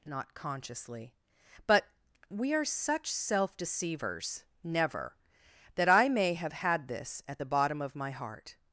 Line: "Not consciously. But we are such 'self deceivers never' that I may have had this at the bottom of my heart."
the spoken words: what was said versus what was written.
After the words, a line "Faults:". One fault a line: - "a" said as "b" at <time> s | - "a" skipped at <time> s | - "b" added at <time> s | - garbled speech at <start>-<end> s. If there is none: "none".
"Not consciously. But we are such 'self deceivers never' that I may have had this at the bottom of my heart."
Faults:
none